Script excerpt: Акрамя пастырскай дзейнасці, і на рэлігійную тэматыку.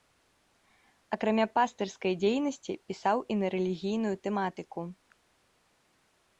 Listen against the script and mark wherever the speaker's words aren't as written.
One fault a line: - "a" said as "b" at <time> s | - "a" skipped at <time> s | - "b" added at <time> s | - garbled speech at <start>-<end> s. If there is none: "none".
- "пісаў" added at 2.9 s